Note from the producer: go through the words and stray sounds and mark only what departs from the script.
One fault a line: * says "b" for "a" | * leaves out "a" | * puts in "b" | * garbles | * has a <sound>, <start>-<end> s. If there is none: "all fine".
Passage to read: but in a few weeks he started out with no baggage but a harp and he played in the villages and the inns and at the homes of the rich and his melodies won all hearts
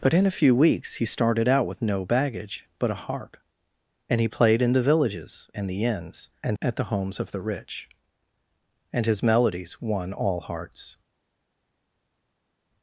all fine